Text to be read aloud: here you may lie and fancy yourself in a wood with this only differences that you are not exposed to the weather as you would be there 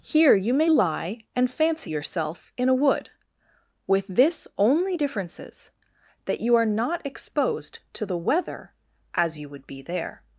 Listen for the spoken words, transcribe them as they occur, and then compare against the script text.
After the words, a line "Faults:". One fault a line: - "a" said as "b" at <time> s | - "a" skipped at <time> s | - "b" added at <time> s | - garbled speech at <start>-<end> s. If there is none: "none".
here you may lie and fancy yourself in a wood with this only differences that you are not exposed to the weather as you would be there
Faults:
none